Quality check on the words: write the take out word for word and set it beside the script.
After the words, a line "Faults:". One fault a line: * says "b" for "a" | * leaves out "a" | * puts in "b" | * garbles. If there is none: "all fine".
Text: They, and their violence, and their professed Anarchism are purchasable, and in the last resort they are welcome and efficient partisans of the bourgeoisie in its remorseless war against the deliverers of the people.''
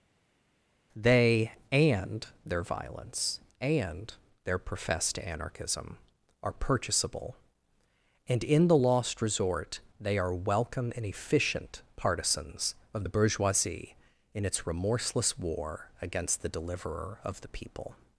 They, and their violence, and their professed Anarchism are purchasable, and in the lost resort they are welcome and efficient partisans of the bourgeoisie in its remorseless war against the deliverer of the people.''
Faults:
* says "lost" for "last"
* says "deliverer" for "deliverers"